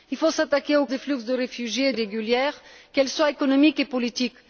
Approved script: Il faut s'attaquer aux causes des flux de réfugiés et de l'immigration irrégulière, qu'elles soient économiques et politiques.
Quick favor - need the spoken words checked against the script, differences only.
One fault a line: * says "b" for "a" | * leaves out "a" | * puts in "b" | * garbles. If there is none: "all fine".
* leaves out "causes"
* leaves out "de l'immigration"